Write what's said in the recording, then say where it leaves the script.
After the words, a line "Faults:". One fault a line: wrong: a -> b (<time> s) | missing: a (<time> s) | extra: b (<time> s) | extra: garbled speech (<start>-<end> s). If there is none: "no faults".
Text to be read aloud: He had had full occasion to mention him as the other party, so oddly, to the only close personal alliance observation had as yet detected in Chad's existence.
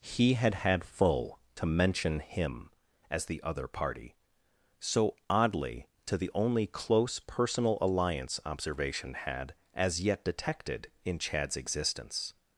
He had had full to mention him as the other party, so oddly, to the only close personal alliance observation had as yet detected in Chad's existence.
Faults:
missing: occasion (1.4 s)